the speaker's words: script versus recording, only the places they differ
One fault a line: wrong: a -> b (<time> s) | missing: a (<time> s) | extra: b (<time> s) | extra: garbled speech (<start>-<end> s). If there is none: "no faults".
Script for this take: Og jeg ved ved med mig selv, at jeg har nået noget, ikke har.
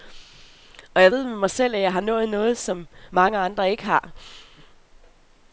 missing: ved (1.2 s)
extra: som mange andre (2.6 s)